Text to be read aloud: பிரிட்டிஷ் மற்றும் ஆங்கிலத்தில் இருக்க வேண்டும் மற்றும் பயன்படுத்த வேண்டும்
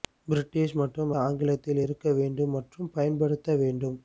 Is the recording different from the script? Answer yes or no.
no